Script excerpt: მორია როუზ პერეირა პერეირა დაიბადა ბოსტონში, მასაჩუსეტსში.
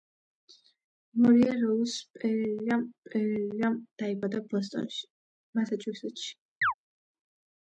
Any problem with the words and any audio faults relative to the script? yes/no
yes